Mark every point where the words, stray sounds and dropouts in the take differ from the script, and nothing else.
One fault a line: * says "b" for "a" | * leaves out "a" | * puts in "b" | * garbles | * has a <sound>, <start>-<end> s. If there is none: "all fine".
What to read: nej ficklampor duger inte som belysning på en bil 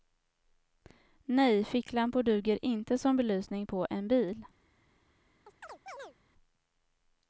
* has a chirp, 5.5-6.2 s